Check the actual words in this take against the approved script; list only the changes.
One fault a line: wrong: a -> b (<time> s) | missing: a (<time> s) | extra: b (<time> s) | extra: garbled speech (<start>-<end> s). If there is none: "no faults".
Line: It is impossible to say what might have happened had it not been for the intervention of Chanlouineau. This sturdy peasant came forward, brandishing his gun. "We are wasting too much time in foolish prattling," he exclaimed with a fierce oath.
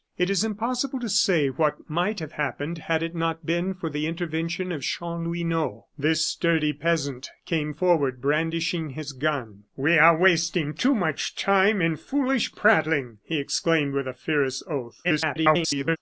extra: garbled speech (15.0-16.0 s)